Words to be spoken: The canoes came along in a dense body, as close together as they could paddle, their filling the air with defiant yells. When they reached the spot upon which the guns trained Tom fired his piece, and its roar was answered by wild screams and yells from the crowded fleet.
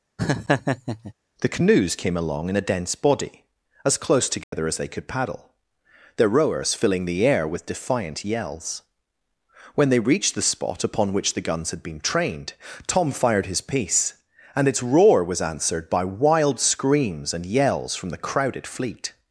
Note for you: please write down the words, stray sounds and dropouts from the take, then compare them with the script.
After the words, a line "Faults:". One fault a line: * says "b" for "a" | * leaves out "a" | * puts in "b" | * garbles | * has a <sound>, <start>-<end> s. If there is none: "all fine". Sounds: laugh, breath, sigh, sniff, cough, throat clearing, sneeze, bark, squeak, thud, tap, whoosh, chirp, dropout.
The canoes came along in a dense body, as close together as they could paddle, their rowers filling the air with defiant yells. When they reached the spot upon which the guns had been trained Tom fired his piece, and its roar was answered by wild screams and yells from the crowded fleet.
Faults:
* has a laugh, 0.2-1.1 s
* has a dropout, 4.4-4.5 s
* puts in "rowers"
* puts in "had been"